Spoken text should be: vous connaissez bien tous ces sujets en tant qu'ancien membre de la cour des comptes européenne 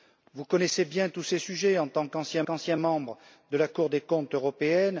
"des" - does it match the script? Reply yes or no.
yes